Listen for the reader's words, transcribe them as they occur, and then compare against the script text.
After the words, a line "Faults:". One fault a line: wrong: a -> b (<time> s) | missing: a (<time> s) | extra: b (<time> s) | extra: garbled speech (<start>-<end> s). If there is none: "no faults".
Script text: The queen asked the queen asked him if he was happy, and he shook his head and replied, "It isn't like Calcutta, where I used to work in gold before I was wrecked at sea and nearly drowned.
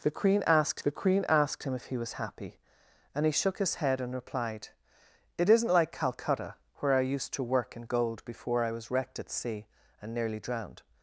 The queen asked the queen asked him if he was happy, and he shook his head and replied, "It isn't like Calcutta, where I used to work in gold before I was wrecked at sea and nearly drowned.
Faults:
no faults